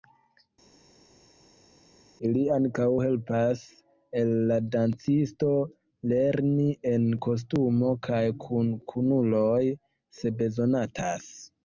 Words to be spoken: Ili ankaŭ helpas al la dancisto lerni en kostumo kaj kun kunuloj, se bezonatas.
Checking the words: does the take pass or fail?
pass